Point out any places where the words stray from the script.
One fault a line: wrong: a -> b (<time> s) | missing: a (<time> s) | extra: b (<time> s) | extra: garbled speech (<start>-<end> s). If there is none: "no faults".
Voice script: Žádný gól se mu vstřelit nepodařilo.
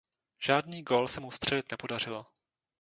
no faults